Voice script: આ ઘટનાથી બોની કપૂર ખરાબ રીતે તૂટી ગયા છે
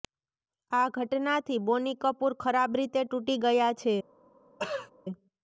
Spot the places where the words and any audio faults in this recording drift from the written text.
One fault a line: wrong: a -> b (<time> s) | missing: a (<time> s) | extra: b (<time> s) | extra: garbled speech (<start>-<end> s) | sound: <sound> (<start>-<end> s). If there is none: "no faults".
sound: throat clearing (4.6-4.9 s)